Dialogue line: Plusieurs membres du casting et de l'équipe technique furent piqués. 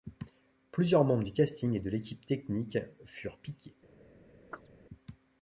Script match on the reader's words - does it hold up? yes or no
yes